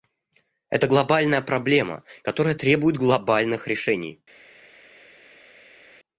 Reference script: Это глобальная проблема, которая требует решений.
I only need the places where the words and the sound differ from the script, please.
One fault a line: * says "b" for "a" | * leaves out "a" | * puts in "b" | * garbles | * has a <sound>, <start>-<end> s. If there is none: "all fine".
* puts in "глобальных"